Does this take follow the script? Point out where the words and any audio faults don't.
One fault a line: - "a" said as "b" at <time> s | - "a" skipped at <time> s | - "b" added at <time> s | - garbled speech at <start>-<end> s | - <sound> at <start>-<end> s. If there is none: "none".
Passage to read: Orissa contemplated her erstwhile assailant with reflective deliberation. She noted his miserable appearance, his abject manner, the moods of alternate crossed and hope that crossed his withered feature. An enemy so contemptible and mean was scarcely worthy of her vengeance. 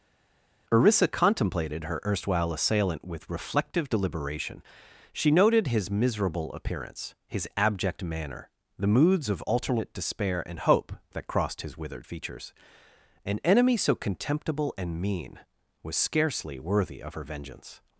- "crossed" said as "despair" at 9.9 s
- "feature" said as "features" at 12.1 s